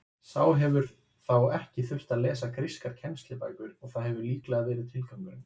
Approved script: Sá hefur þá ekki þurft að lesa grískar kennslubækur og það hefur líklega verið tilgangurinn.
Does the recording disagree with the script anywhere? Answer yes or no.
no